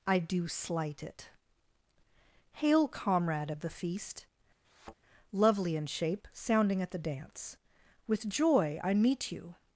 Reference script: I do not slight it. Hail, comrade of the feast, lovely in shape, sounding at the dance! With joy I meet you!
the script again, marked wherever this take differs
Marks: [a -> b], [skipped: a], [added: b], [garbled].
I do [skipped: not] slight it. Hail, comrade of the feast, lovely in shape, sounding at the dance! With joy I meet you!